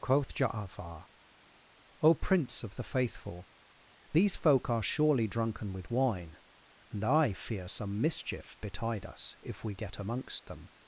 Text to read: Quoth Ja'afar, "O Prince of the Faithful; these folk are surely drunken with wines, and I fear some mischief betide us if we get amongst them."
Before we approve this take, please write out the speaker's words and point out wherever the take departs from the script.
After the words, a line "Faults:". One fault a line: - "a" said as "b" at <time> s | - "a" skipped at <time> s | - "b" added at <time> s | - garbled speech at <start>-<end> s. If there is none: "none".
Quoth Ja'afar, "O Prince of the Faithful; these folk are surely drunken with wine, and I fear some mischief betide us if we get amongst them."
Faults:
- "wines" said as "wine" at 5.9 s